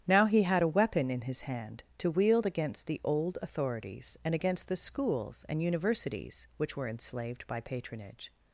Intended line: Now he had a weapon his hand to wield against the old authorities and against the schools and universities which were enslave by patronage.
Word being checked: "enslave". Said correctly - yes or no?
no